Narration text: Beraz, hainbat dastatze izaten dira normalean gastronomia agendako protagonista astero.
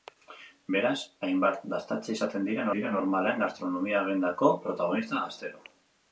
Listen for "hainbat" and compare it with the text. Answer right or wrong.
right